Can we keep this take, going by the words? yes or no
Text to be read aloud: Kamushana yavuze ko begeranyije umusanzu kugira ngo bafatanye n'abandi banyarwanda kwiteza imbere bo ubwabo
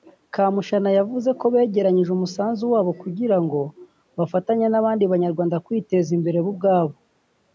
no